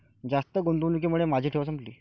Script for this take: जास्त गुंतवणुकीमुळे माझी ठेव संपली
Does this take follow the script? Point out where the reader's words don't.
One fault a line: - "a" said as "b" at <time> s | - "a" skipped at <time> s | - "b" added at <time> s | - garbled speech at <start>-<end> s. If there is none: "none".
none